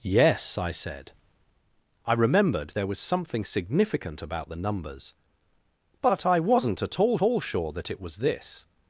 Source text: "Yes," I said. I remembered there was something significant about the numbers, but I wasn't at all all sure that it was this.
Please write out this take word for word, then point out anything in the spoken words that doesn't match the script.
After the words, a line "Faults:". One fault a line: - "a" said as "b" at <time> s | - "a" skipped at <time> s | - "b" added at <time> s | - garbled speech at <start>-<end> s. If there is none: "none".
"Yes," I said. I remembered there was something significant about the numbers, but I wasn't at all all sure that it was this.
Faults:
none